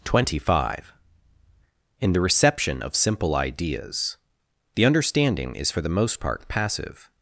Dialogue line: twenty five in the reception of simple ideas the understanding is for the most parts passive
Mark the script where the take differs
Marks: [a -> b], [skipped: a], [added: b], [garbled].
twenty five in the reception of simple ideas the understanding is for the most [parts -> part] passive